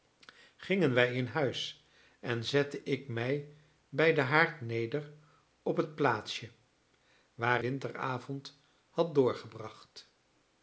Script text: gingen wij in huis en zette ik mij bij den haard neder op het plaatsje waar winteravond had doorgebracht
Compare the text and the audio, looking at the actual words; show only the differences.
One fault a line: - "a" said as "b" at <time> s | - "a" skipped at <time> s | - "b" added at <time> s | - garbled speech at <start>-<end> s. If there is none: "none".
none